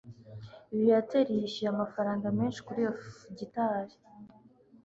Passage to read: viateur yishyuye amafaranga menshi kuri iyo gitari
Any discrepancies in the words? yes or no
no